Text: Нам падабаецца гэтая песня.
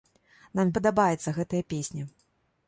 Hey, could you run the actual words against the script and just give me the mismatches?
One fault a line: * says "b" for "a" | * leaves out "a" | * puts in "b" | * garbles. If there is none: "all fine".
all fine